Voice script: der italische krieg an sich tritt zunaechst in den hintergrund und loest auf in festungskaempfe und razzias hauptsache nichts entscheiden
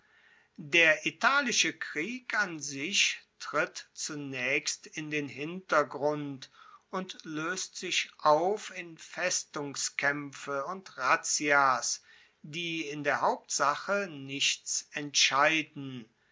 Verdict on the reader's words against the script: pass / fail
fail